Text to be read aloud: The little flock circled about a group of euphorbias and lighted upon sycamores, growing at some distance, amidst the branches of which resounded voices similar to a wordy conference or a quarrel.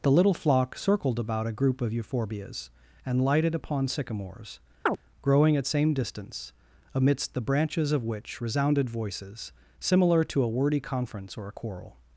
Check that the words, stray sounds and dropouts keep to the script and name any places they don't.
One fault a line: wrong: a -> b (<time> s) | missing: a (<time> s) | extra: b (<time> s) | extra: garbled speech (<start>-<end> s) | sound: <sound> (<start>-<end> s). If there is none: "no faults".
sound: chirp (4.9-5.0 s)
wrong: some -> same (5.6 s)